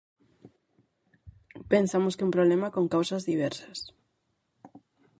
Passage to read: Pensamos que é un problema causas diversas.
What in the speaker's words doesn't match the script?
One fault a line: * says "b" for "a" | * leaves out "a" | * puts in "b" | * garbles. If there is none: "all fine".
* puts in "con"